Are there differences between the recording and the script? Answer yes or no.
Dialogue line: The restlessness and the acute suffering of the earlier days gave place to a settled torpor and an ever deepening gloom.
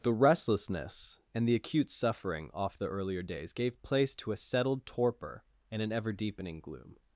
yes